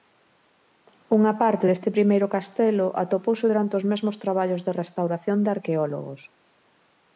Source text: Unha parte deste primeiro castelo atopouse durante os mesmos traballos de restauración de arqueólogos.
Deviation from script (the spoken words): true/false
false